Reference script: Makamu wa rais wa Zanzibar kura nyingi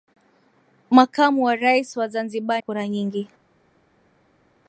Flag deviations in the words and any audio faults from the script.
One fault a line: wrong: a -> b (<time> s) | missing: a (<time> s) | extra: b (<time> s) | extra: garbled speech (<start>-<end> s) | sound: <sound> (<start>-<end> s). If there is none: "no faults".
no faults